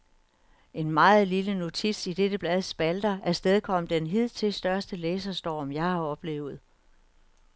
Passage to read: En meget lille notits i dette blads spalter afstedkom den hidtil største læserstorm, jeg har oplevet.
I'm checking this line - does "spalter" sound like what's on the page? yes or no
yes